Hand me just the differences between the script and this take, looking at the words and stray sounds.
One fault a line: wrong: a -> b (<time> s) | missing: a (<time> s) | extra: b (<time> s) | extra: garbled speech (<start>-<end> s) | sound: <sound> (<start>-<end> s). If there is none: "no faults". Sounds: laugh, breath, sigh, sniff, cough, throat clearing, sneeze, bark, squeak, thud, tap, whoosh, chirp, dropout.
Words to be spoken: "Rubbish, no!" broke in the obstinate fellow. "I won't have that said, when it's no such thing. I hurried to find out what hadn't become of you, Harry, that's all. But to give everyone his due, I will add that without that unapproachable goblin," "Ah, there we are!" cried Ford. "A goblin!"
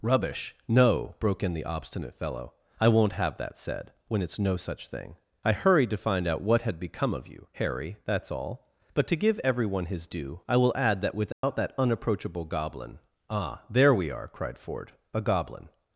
wrong: hadn't -> had (6.6 s)
sound: dropout (11.3-11.4 s)